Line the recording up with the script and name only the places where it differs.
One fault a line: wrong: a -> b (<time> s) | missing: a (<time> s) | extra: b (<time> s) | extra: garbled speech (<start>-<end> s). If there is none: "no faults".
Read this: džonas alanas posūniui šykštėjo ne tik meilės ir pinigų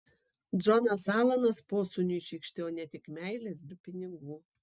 no faults